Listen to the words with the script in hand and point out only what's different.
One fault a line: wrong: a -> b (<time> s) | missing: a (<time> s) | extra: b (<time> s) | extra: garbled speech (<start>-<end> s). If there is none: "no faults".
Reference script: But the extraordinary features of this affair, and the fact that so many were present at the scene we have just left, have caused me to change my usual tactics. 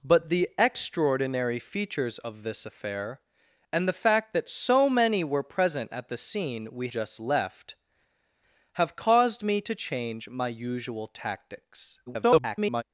missing: have (6.9 s)
extra: garbled speech (12.1-12.8 s)